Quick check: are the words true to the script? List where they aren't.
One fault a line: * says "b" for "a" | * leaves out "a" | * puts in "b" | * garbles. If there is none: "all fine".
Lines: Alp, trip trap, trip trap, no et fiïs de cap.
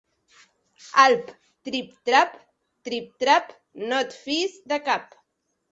all fine